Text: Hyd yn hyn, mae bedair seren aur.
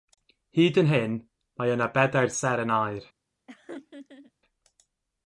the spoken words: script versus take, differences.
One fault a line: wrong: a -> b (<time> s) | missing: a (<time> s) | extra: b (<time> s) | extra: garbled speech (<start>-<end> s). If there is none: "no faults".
extra: yna (1.8 s)